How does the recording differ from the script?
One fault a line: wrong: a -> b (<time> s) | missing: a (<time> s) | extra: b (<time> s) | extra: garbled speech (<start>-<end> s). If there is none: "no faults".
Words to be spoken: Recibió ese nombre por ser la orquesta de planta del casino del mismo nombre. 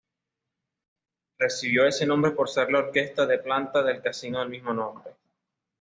no faults